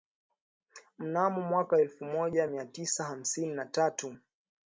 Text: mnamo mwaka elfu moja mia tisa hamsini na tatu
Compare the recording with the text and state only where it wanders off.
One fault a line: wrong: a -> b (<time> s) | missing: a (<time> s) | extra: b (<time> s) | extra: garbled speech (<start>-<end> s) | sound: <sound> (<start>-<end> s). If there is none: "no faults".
no faults